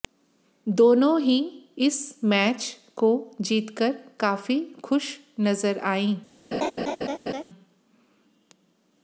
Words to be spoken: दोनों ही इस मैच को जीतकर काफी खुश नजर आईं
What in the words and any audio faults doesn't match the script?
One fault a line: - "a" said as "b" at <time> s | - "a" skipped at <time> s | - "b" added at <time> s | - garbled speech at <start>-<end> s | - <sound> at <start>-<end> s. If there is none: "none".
- laugh at 6.5-7.4 s